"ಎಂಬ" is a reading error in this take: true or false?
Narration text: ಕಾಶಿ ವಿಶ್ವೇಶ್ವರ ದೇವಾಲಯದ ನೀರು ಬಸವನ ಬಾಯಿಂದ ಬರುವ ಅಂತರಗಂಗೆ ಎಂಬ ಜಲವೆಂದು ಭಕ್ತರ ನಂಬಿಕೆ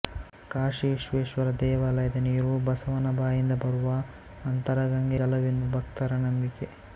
true